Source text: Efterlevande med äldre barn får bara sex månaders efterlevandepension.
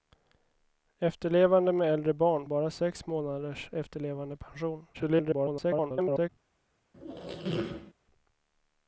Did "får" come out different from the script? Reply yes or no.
yes